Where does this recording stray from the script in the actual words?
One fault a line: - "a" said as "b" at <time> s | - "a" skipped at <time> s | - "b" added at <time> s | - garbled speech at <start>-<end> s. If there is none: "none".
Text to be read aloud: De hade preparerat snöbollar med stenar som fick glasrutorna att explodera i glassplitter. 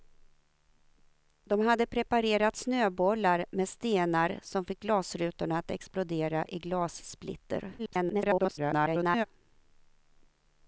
- garbled speech at 7.8-9.3 s